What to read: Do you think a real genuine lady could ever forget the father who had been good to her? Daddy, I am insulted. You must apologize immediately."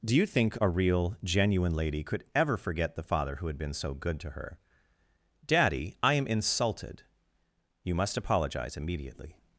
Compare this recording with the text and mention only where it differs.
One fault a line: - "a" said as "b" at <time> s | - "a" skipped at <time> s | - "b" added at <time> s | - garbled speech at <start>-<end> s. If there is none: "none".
- "so" added at 3.7 s